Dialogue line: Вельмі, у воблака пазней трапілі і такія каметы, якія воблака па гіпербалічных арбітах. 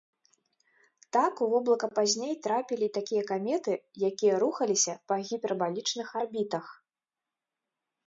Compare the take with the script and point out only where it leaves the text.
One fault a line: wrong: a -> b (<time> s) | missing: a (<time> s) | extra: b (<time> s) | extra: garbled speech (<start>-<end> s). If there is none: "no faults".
wrong: Вельмі -> Так (1.2 s)
wrong: воблака -> рухаліся (4.5 s)